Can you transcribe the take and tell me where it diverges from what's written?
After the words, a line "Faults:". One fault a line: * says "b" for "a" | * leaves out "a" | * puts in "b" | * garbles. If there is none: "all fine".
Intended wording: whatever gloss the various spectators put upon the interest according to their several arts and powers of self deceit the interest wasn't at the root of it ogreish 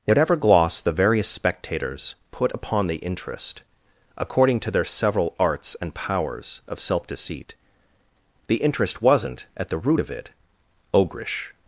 whatever gloss the various spectators put upon the interest according to their several arts and powers of self deceit the interest wasn't at the root of it ogreish
Faults:
all fine